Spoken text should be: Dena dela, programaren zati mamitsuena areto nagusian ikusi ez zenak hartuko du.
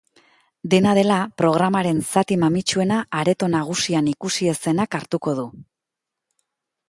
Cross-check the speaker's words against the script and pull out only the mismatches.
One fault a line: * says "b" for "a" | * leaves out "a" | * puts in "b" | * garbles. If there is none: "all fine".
all fine